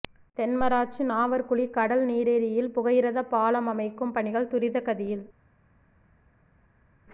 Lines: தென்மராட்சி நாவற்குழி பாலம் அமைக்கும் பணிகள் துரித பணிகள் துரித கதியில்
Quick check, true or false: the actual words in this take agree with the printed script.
false